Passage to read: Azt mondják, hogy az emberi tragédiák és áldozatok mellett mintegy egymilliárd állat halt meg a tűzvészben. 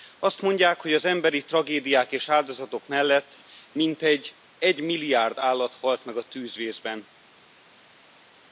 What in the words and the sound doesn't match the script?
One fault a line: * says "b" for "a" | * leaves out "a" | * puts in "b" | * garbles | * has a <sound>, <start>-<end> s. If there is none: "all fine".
all fine